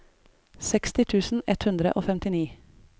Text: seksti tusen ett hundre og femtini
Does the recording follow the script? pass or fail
pass